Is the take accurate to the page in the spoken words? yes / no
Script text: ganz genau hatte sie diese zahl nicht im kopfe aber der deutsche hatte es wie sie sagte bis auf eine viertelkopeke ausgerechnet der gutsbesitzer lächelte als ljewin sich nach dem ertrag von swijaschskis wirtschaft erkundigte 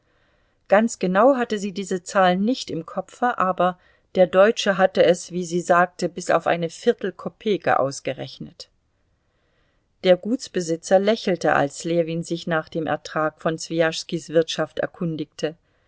yes